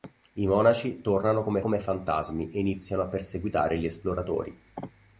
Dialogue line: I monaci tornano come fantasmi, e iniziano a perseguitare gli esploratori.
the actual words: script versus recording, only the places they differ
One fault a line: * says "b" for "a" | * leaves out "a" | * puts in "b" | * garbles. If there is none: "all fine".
* puts in "come"